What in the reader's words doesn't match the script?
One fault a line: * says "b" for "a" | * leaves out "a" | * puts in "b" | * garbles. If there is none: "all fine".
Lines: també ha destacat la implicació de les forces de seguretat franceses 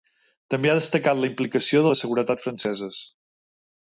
* leaves out "les forces"